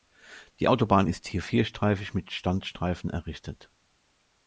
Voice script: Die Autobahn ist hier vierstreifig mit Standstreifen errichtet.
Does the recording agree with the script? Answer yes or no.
yes